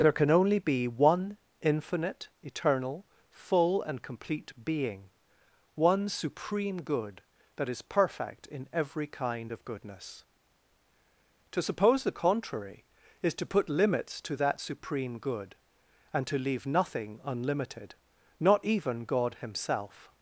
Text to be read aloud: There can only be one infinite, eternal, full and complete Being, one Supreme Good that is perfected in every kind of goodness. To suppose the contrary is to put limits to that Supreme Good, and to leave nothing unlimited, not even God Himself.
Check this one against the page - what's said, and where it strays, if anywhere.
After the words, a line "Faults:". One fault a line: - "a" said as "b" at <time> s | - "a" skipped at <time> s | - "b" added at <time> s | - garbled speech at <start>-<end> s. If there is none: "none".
There can only be one infinite, eternal, full and complete Being, one Supreme Good that is perfect in every kind of goodness. To suppose the contrary is to put limits to that Supreme Good, and to leave nothing unlimited, not even God Himself.
Faults:
- "perfected" said as "perfect" at 7.8 s